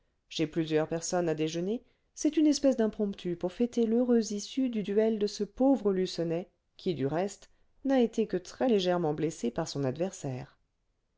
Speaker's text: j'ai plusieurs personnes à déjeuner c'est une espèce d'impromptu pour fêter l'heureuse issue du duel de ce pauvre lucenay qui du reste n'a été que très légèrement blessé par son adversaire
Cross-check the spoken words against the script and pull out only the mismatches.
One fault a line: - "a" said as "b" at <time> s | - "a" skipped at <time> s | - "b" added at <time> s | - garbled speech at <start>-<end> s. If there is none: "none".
none